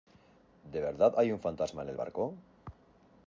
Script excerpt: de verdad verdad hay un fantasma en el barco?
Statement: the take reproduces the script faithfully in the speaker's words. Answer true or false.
false